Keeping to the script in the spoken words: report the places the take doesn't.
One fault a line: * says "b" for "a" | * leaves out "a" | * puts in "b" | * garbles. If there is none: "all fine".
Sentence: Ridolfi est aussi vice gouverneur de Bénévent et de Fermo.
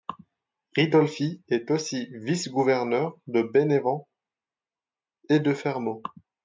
all fine